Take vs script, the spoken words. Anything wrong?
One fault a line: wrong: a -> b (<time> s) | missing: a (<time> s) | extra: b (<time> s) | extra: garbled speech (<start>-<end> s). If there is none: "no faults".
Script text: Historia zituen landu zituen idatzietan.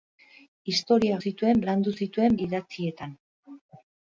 no faults